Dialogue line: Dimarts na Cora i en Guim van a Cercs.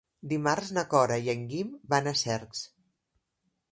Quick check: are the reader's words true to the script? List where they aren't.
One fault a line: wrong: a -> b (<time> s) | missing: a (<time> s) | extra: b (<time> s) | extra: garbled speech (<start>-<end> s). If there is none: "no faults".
no faults